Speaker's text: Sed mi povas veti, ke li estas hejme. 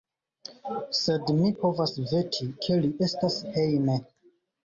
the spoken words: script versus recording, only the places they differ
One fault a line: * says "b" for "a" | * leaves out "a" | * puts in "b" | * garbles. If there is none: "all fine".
all fine